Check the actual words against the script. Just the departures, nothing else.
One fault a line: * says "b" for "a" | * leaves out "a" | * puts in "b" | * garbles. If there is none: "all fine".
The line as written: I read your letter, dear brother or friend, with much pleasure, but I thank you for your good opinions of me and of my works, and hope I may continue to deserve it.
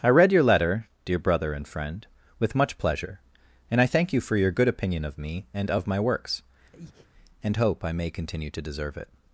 * says "and" for "or"
* says "and" for "but"
* says "opinion" for "opinions"